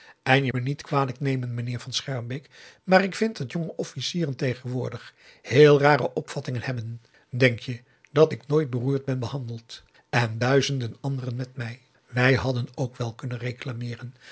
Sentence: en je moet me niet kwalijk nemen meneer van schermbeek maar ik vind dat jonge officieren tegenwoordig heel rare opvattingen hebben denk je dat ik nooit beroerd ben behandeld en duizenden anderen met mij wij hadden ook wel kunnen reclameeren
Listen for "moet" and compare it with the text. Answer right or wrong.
wrong